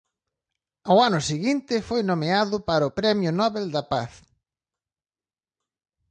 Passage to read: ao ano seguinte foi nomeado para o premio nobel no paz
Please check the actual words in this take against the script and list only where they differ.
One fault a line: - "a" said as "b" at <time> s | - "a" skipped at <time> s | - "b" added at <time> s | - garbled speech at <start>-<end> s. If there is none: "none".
- "no" said as "da" at 3.7 s